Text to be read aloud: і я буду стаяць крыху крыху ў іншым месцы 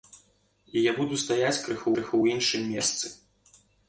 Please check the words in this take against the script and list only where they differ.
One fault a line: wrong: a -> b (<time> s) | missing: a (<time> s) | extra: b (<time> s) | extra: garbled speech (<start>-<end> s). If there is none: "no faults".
no faults